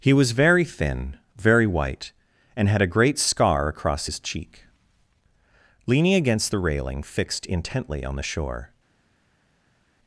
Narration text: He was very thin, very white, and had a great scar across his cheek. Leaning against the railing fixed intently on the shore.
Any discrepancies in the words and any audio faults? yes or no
no